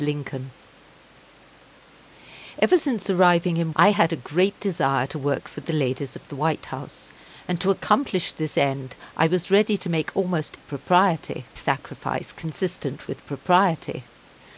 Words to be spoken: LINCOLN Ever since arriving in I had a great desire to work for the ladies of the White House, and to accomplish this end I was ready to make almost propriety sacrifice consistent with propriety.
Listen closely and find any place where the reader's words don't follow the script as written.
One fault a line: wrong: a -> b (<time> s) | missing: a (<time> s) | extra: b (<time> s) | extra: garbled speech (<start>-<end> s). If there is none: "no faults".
no faults